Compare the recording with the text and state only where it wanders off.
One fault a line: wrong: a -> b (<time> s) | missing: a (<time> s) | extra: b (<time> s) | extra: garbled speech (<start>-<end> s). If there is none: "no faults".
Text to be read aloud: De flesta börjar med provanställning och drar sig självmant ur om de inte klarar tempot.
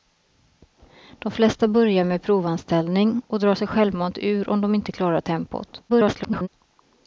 extra: garbled speech (5.9-6.5 s)